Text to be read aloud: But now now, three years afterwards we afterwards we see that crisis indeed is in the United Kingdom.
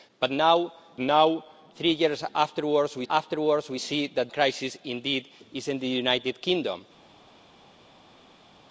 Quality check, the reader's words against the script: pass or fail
pass